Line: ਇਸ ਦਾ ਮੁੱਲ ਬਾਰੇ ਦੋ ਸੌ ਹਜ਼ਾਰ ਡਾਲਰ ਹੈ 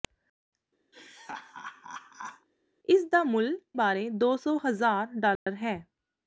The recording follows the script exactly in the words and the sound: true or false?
false